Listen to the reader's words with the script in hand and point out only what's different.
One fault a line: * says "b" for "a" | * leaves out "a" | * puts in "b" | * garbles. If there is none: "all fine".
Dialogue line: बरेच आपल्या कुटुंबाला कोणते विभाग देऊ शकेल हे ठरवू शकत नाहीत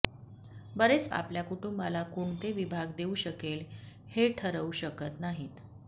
all fine